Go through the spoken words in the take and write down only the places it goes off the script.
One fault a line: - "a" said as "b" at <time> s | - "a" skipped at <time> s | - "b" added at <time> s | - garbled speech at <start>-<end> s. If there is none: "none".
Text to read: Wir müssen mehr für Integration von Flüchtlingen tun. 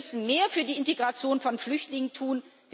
- "die" added at 0.6 s